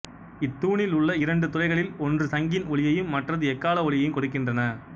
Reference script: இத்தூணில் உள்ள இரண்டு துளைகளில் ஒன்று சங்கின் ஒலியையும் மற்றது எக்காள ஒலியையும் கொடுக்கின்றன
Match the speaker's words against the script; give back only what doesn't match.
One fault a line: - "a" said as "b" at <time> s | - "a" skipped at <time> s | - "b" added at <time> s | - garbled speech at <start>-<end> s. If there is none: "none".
none